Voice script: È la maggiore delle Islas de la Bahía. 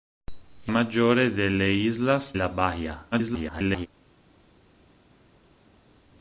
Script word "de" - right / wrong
wrong